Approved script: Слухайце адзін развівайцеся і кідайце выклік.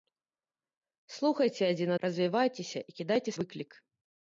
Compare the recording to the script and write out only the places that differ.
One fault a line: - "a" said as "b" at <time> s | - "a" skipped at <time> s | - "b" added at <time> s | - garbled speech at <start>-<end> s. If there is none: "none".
none